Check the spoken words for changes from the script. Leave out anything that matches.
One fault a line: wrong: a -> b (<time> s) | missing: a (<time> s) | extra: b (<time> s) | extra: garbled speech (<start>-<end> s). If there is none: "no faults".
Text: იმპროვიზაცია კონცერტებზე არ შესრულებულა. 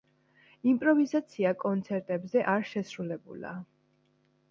no faults